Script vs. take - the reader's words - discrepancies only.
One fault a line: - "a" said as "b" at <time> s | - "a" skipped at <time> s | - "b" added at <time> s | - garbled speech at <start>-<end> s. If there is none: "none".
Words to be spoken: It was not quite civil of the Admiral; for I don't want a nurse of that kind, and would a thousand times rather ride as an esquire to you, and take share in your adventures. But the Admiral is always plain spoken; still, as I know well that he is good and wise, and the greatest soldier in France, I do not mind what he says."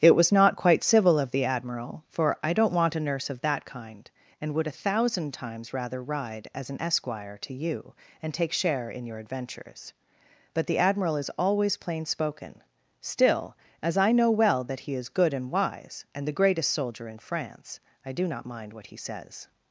none